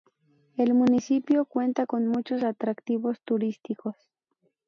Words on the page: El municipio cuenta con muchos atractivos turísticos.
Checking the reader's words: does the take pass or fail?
pass